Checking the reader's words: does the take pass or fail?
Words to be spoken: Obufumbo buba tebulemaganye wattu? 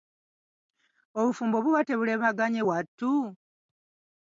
pass